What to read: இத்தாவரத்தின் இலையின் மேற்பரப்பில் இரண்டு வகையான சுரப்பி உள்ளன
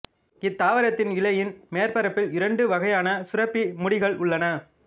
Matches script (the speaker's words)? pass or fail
fail